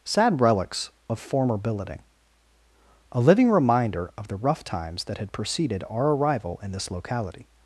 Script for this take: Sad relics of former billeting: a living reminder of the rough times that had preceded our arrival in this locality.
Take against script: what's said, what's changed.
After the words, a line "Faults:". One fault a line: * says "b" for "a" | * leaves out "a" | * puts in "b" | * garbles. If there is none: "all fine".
Sad relics of former billeting: a living reminder of the rough times that had preceded our arrival in this locality.
Faults:
all fine